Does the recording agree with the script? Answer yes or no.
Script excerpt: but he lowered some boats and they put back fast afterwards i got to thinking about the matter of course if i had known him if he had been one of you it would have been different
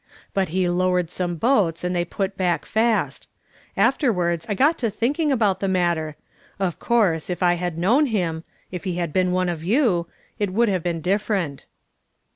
yes